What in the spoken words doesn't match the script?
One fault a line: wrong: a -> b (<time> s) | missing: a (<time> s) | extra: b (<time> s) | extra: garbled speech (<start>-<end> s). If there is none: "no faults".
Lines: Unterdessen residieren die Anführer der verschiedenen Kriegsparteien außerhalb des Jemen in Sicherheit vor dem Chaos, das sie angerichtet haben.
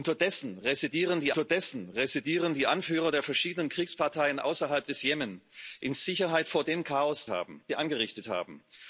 extra: unterdessen residieren die (1.3 s)
wrong: das -> haben (7.3 s)